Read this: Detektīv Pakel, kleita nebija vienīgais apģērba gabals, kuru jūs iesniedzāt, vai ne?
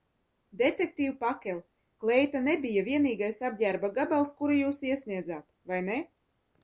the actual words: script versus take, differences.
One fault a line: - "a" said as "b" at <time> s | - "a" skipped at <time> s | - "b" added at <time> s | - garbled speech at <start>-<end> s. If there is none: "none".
none